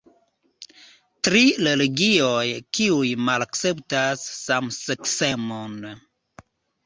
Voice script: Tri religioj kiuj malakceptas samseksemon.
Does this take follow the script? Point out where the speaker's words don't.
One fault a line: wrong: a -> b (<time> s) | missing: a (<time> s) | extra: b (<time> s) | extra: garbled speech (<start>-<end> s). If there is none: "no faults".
no faults